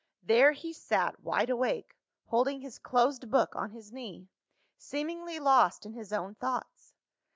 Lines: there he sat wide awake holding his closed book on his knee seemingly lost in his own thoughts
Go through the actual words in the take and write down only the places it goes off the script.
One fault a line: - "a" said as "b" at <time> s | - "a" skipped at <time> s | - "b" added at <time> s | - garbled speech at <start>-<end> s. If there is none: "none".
none